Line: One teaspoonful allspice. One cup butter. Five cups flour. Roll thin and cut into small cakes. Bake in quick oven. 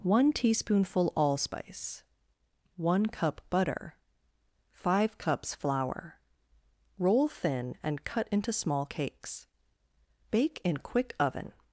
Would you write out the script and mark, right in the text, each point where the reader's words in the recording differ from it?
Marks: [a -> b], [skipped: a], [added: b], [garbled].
One teaspoonful allspice. One cup butter. Five cups flour. Roll thin and cut into small cakes. Bake in quick oven.